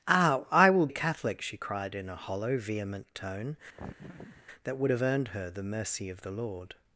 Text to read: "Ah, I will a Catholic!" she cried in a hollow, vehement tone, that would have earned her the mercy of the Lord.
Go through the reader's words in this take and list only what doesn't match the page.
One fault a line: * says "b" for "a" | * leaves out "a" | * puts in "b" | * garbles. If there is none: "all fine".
all fine